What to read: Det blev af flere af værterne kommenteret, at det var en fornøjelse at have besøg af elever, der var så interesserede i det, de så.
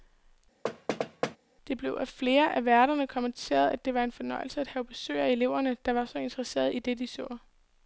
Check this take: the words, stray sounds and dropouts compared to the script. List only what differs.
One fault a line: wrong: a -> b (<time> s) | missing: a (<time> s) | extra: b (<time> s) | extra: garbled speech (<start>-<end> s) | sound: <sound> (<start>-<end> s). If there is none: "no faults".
sound: thud (0.6-1.4 s)